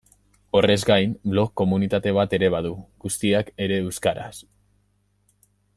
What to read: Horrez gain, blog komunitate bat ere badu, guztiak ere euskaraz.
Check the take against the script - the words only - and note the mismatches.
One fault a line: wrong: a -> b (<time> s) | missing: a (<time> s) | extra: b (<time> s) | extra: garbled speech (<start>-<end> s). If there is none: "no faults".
no faults